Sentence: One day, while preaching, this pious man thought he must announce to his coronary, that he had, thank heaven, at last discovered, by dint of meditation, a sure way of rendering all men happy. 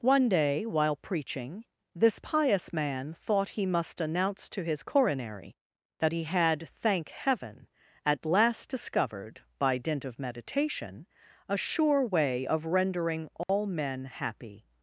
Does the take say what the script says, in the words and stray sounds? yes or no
no